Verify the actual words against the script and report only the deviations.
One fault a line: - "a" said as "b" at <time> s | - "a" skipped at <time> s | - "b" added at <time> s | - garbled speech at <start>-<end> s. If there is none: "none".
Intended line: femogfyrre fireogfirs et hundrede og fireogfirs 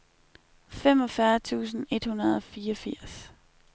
- "fireogfirs" said as "tusind" at 1.4 s